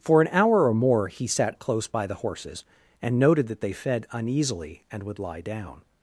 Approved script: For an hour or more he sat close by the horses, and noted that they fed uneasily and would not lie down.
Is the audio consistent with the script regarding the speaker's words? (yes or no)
no